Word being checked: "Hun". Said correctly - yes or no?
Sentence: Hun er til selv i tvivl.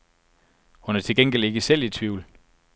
yes